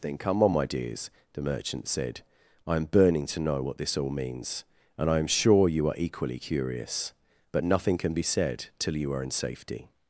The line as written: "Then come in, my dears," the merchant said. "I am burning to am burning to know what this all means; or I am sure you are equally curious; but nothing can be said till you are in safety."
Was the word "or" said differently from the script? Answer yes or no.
yes